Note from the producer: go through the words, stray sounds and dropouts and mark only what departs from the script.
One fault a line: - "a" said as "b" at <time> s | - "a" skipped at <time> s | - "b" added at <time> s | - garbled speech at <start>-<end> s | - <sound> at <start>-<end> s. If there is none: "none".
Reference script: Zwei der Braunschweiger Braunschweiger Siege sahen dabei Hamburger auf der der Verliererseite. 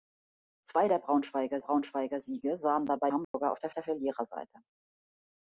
- dropout at 3.2-3.3 s